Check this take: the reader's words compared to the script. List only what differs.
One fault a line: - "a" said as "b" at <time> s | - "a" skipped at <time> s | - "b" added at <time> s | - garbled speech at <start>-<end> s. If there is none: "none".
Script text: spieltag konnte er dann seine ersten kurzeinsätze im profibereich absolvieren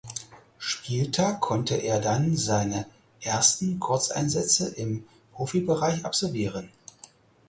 none